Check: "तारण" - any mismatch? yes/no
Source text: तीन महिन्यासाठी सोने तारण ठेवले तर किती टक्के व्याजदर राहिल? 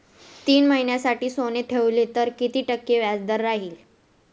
yes